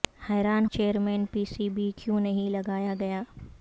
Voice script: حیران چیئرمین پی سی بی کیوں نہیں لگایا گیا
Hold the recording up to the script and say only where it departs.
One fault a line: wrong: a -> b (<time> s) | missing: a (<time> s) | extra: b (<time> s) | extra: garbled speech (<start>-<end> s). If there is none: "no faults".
no faults